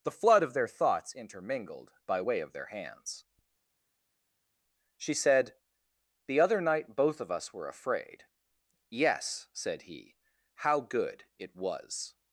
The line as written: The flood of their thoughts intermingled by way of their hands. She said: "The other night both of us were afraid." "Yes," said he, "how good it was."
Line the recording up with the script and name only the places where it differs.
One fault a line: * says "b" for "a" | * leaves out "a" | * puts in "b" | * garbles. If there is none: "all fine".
all fine